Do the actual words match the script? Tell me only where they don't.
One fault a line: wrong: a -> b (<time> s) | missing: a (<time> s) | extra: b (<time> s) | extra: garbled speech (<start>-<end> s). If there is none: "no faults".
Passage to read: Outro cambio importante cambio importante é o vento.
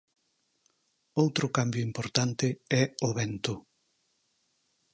missing: cambio importante (2.5 s)